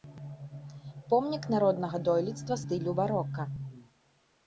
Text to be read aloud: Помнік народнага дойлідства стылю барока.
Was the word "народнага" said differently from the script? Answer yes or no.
no